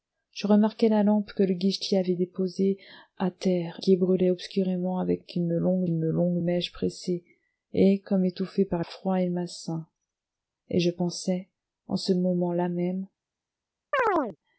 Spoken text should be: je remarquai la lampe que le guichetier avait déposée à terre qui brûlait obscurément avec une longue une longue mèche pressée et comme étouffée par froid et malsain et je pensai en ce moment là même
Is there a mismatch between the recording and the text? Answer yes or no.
no